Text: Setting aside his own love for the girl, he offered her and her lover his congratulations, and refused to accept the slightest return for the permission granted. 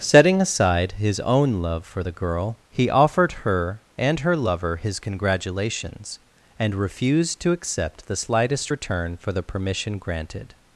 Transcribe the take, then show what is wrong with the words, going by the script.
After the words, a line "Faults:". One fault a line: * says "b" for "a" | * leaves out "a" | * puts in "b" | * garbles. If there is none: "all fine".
Setting aside his own love for the girl, he offered her and her lover his congratulations, and refused to accept the slightest return for the permission granted.
Faults:
all fine